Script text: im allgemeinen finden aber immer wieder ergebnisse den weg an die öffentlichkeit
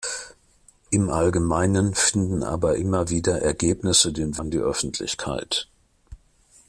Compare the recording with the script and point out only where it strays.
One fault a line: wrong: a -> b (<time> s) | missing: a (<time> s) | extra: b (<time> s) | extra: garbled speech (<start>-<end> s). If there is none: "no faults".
missing: weg (4.4 s)